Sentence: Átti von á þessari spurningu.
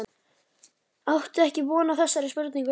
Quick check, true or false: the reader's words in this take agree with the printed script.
false